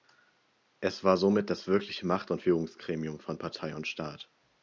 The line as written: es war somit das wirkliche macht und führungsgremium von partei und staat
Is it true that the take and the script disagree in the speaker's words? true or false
false